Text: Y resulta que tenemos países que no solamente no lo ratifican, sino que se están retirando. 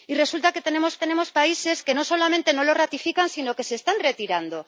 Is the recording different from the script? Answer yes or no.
yes